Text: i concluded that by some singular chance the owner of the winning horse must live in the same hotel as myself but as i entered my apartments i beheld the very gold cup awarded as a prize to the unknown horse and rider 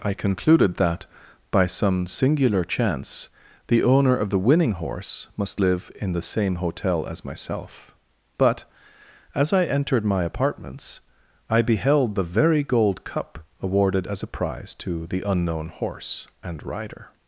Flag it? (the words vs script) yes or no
no